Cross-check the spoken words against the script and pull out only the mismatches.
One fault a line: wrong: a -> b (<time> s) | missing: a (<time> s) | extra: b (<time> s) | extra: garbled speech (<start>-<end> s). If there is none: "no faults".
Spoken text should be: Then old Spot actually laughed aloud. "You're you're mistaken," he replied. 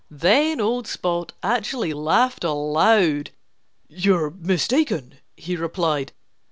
missing: you're (4.3 s)